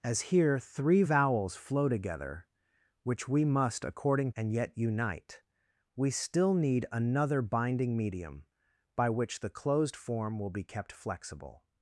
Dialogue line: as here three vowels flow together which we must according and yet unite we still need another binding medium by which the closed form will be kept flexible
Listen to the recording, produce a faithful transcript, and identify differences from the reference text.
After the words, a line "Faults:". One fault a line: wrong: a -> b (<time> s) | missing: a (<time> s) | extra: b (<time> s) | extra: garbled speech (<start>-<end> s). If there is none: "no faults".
as here three vowels flow together which we must according and yet unite we still need another binding medium by which the closed form will be kept flexible
Faults:
no faults